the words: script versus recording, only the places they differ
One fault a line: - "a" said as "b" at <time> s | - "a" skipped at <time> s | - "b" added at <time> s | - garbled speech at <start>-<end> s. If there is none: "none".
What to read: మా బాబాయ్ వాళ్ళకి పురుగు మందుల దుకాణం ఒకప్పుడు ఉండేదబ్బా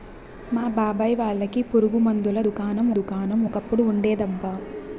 - "దుకాణం" added at 3.0 s